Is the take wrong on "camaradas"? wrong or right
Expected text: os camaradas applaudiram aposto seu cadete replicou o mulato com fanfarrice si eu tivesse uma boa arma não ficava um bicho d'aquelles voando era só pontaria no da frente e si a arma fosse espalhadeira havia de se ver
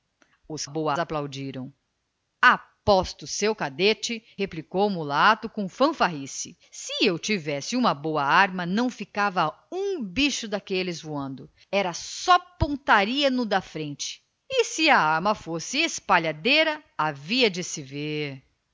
wrong